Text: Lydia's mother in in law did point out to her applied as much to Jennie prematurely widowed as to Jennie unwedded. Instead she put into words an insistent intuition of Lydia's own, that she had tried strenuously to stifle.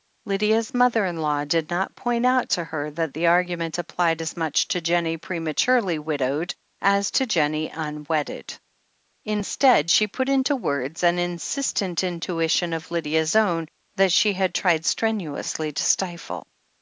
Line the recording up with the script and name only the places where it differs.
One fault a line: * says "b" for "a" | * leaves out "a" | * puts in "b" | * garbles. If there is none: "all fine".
* leaves out "in"
* puts in "not"
* puts in "that the argument"